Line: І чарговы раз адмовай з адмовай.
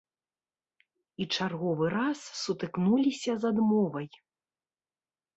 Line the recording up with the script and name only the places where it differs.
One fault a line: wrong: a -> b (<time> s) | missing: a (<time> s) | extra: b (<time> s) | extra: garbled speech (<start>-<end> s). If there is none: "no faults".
wrong: адмовай -> сутыкнуліся (2.4 s)